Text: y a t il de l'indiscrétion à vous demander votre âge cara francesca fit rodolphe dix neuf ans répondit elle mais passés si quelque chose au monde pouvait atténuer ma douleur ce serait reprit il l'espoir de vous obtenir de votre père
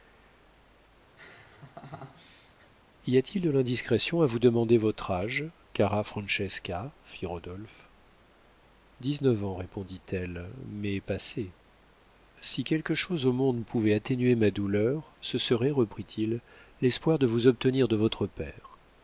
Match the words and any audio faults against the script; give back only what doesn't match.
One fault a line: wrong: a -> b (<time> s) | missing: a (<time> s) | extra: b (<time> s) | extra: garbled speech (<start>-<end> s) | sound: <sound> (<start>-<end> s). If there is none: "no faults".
sound: laugh (1.2-2.7 s)